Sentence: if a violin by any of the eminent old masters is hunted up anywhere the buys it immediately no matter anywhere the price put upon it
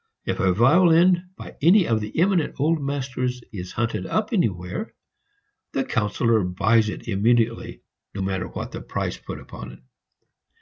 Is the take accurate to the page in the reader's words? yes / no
no